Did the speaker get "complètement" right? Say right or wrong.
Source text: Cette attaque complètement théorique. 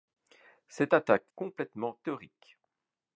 right